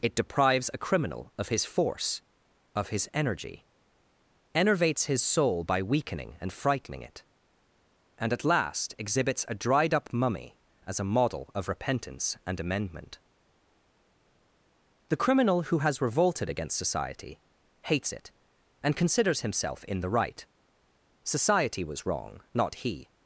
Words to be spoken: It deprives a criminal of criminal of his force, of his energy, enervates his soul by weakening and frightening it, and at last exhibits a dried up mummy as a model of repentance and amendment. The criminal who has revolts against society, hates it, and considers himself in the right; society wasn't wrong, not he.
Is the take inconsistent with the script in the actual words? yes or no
yes